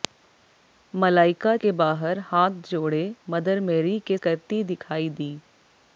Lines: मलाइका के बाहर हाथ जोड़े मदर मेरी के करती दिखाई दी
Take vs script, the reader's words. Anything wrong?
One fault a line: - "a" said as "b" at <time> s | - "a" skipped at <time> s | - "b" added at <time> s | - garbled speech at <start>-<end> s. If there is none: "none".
none